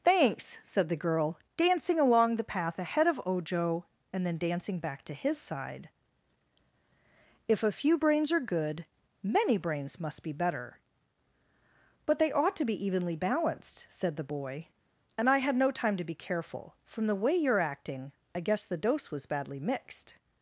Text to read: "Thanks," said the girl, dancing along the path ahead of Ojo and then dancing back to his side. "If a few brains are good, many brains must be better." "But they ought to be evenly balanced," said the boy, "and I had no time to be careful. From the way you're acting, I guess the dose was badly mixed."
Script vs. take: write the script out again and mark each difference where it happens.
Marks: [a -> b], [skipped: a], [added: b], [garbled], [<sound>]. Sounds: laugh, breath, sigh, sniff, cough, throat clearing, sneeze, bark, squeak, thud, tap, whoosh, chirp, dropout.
"Thanks," said the girl, dancing along the path ahead of Ojo and then dancing back to his side. "If a few brains are good, many brains must be better." "But they ought to be evenly balanced," said the boy, "and I had no time to be careful. From the way you're acting, I guess the dose was badly mixed."